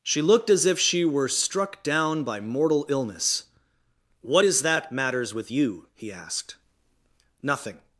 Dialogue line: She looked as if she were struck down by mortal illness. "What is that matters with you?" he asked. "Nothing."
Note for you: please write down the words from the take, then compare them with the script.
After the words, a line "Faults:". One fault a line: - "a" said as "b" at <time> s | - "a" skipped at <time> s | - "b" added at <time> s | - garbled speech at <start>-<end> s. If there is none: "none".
She looked as if she were struck down by mortal illness. "What is that matters with you?" he asked. "Nothing."
Faults:
none